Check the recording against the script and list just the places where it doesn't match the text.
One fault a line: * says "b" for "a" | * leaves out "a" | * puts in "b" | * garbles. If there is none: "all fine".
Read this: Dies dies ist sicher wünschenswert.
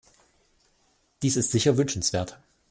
* leaves out "dies"